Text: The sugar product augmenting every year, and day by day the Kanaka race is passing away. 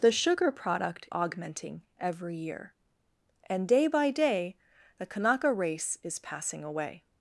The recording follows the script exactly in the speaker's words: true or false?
true